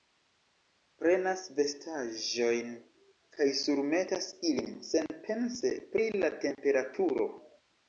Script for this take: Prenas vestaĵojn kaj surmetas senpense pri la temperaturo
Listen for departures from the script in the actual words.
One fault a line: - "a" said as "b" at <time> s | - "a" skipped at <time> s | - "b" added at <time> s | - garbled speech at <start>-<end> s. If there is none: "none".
- "ilin" added at 4.5 s